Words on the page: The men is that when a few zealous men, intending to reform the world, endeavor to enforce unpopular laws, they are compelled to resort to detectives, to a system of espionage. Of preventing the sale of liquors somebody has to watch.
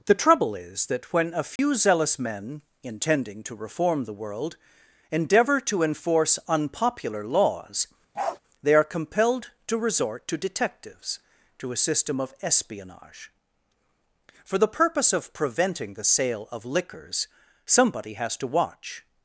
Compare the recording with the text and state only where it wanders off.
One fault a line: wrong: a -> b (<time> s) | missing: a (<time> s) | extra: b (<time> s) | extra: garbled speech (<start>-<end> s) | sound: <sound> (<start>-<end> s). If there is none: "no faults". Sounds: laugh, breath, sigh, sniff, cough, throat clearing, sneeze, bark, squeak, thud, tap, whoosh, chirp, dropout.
wrong: men -> trouble (0.1 s)
sound: dropout (1.6-1.6 s)
sound: bark (8.1-8.4 s)
extra: For the purpose (14.4 s)